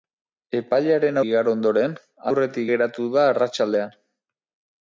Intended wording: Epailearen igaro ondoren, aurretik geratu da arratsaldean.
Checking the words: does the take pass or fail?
pass